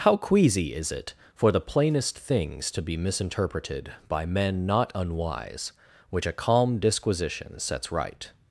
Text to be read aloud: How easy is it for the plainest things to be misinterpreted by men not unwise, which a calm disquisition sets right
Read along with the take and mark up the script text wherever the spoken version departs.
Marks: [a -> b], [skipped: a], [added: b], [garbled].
How [easy -> queasy] is it for the plainest things to be misinterpreted by men not unwise, which a calm disquisition sets right